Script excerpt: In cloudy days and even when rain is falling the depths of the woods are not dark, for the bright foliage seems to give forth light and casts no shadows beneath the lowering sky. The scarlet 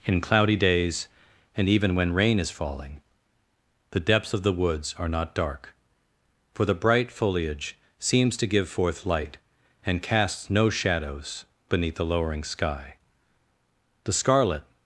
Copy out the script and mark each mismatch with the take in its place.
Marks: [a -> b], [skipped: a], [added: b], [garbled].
In cloudy days and even when rain is falling the depths of the woods are not dark, for the bright foliage seems to give forth light and casts no shadows beneath the lowering sky. The scarlet